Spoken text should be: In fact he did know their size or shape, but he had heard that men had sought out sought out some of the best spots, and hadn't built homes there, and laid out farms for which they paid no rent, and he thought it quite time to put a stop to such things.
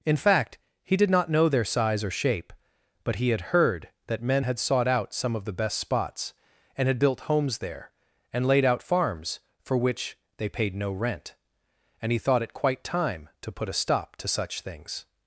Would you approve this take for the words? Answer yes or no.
no